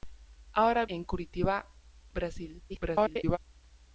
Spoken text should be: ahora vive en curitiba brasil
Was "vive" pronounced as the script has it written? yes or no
no